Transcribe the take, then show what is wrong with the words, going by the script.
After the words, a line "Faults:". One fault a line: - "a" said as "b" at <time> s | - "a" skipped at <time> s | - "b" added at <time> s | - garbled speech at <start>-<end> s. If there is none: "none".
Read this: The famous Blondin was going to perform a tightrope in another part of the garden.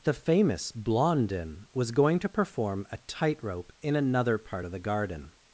The famous Blondin was going to perform a tightrope in another part of the garden.
Faults:
none